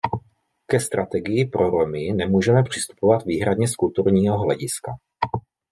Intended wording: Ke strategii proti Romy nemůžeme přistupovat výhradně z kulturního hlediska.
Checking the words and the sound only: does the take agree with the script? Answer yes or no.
no